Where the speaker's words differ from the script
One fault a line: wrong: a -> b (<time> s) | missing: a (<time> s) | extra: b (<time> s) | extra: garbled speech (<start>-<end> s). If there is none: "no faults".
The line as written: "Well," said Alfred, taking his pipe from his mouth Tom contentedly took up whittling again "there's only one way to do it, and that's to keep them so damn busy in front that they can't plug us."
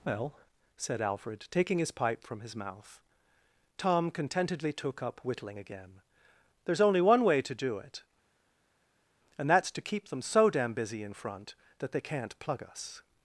no faults